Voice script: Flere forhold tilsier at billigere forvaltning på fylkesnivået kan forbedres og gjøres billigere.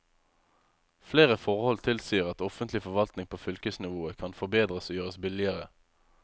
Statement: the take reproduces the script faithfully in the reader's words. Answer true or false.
false